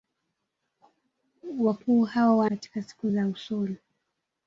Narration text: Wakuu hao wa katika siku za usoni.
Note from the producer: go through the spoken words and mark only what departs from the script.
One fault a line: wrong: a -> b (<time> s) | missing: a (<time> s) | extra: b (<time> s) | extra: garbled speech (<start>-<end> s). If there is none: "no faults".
no faults